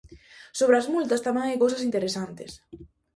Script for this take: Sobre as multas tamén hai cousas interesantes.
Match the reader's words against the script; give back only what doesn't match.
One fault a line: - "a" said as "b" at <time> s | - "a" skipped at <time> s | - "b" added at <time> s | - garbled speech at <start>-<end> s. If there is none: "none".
none